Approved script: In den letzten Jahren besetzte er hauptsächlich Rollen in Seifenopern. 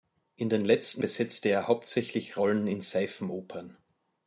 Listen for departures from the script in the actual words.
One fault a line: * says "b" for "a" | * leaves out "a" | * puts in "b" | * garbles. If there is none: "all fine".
* leaves out "Jahren"